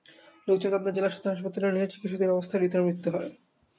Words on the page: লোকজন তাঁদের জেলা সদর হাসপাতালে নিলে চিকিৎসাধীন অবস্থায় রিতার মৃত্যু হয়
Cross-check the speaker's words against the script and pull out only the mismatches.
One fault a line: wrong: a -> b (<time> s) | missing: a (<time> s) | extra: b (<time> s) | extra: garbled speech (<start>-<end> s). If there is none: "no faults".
no faults